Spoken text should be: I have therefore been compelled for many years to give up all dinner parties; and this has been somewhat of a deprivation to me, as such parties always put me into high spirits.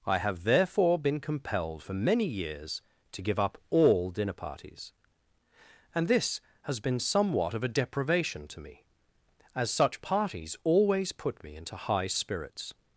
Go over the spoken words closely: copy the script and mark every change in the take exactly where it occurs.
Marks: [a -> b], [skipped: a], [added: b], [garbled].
I have therefore been compelled for many years to give up all dinner parties; and this has been somewhat of a deprivation to me, as such parties always put me into high spirits.